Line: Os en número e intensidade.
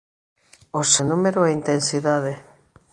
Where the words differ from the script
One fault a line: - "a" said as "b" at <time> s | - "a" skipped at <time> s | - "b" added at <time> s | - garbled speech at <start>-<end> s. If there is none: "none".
none